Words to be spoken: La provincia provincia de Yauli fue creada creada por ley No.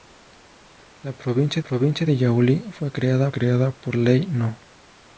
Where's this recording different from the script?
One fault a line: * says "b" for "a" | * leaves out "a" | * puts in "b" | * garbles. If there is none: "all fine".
all fine